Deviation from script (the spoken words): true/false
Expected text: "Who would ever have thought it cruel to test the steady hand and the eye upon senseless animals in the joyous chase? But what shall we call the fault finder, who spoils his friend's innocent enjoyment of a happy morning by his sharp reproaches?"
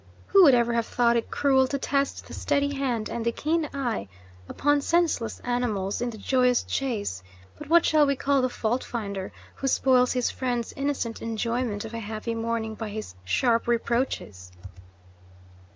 true